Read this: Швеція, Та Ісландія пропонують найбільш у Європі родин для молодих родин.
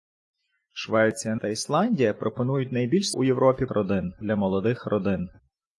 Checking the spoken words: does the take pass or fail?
pass